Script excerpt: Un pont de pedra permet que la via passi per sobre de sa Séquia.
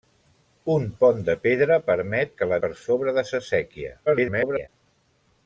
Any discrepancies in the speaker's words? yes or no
yes